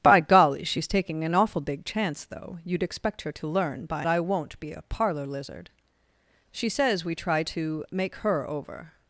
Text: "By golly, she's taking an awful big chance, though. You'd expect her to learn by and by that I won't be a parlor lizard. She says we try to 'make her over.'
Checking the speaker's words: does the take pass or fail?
fail